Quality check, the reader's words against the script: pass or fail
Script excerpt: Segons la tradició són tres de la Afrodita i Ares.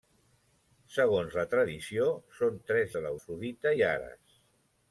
pass